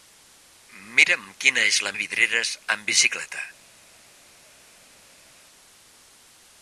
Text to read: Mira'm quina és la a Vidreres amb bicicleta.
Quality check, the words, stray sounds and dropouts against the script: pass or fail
pass